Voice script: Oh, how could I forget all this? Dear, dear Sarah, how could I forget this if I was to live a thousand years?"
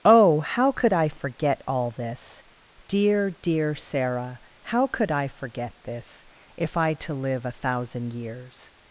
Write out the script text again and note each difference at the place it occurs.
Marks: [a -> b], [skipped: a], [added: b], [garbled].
Oh, how could I forget all this? Dear, dear Sarah, how could I forget this if I [skipped: was] to live a thousand years?"